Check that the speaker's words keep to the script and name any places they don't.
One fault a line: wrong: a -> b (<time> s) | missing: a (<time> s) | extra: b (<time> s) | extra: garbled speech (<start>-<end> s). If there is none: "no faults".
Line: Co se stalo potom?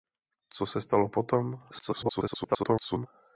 extra: garbled speech (1.7-3.1 s)